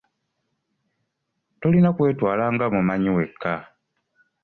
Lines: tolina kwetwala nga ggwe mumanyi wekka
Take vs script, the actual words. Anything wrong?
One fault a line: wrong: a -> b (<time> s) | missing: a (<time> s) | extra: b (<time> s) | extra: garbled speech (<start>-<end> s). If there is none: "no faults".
missing: ggwe (2.7 s)